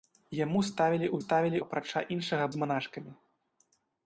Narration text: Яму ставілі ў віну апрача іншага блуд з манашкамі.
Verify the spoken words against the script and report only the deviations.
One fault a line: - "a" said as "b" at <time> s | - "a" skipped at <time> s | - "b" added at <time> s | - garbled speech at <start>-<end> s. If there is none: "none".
- "віну" said as "ставілі" at 1.2 s
- "блуд" skipped at 2.4 s